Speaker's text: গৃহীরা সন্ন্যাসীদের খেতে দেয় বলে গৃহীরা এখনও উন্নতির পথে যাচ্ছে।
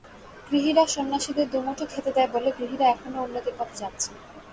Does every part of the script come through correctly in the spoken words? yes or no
no